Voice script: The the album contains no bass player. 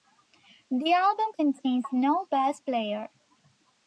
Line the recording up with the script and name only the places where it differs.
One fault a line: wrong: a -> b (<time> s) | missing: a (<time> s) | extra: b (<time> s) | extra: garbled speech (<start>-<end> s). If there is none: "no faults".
missing: the (0.9 s)